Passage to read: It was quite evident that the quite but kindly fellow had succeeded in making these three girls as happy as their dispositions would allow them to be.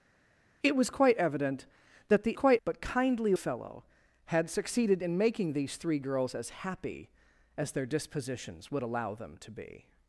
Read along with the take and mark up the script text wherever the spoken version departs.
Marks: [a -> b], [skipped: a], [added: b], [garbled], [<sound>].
It was quite evident that the quite but kindly fellow had succeeded in making these three girls as happy as their dispositions would allow them to be.